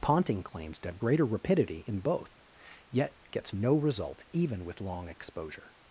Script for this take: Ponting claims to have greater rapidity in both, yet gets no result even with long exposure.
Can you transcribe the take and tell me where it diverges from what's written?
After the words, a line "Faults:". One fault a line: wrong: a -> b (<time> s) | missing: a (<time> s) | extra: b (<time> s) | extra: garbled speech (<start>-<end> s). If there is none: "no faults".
Ponting claims to have greater rapidity in both, yet gets no result even with long exposure.
Faults:
no faults